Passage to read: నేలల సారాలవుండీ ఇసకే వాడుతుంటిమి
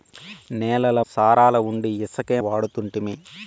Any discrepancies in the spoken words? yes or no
no